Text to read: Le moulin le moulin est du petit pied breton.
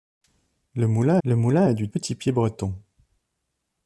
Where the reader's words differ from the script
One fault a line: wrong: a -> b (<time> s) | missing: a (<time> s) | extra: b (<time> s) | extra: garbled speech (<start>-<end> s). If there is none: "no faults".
no faults